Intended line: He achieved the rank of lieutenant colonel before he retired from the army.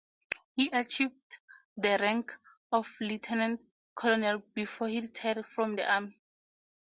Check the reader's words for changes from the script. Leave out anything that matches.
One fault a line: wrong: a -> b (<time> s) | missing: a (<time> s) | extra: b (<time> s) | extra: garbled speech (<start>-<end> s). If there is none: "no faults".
no faults